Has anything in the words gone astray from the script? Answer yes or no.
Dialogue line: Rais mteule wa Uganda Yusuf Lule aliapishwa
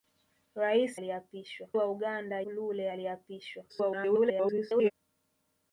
yes